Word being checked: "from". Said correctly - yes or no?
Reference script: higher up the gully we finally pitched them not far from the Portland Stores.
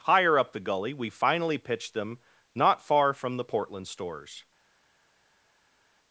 yes